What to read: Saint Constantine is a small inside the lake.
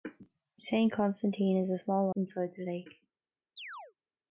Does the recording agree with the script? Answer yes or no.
yes